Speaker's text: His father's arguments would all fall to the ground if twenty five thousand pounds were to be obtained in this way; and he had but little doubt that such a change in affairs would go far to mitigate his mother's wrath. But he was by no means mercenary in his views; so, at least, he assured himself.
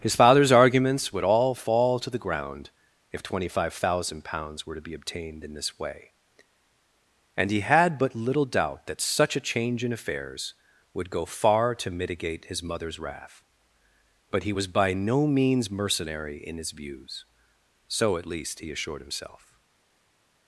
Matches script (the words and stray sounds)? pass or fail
pass